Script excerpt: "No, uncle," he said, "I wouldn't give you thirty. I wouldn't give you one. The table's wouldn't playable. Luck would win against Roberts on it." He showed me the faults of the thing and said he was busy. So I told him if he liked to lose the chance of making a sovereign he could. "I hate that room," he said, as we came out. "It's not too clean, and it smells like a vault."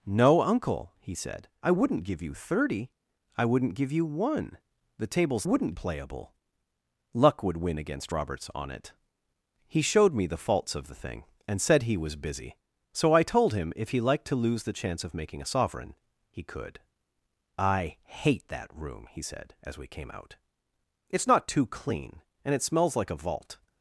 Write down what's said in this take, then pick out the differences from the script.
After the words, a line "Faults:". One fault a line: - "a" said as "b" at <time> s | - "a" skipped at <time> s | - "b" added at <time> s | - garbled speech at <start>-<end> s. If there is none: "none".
"No, uncle," he said, "I wouldn't give you thirty. I wouldn't give you one. The table's wouldn't playable. Luck would win against Roberts on it." He showed me the faults of the thing and said he was busy. So I told him if he liked to lose the chance of making a sovereign he could. "I hate that room," he said, as we came out. "It's not too clean, and it smells like a vault."
Faults:
none